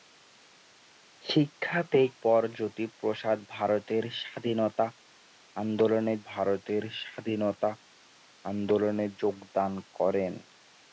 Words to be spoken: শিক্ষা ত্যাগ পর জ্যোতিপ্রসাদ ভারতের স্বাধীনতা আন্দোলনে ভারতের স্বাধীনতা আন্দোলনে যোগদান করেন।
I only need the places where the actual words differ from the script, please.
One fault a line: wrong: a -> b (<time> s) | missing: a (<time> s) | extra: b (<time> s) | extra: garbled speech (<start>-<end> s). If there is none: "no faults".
no faults